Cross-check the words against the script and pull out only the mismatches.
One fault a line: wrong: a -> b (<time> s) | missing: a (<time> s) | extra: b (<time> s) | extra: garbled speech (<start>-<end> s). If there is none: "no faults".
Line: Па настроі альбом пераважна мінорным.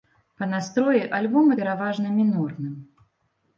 no faults